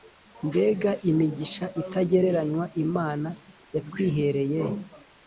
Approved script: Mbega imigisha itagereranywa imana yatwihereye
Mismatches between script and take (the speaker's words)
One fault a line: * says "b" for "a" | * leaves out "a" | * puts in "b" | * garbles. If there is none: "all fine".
all fine